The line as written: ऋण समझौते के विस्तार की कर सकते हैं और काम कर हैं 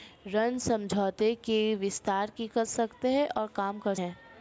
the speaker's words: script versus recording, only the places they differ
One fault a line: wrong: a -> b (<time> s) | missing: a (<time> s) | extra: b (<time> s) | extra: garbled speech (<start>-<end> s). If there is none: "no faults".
no faults